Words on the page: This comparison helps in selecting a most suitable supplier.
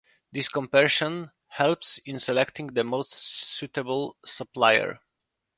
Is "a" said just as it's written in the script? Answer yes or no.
no